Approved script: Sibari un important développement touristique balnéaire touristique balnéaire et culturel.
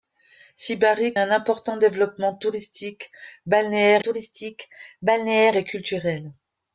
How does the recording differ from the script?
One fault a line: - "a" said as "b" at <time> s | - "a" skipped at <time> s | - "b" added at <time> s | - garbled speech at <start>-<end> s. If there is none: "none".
none